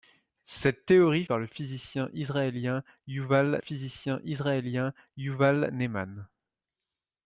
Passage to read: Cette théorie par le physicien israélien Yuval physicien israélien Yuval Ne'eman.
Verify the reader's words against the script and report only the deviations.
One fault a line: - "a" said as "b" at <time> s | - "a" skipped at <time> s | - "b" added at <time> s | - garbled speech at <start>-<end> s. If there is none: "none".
none